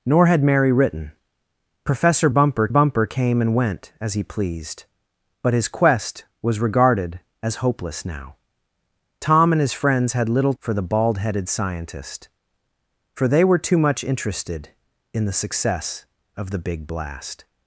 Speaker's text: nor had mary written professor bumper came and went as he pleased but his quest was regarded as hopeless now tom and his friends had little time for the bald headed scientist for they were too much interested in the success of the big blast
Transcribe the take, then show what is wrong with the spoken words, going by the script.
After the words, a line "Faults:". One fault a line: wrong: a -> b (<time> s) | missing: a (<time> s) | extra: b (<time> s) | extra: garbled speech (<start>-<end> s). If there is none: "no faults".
nor had mary written professor bumper bumper came and went as he pleased but his quest was regarded as hopeless now tom and his friends had little for the bald headed scientist for they were too much interested in the success of the big blast
Faults:
extra: bumper (2.7 s)
missing: time (10.5 s)